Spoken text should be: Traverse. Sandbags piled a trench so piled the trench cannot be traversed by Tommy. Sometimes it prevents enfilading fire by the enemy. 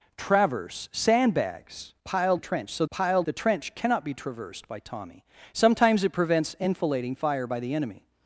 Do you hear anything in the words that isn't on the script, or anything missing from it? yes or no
no